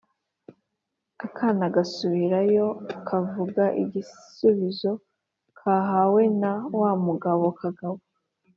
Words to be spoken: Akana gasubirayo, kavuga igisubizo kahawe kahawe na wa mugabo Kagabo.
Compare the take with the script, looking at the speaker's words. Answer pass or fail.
fail